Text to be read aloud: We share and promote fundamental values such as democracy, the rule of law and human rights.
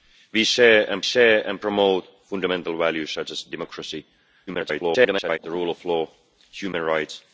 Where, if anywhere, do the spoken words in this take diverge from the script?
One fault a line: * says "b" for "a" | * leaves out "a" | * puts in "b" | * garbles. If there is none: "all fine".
* puts in "share and"
* garbles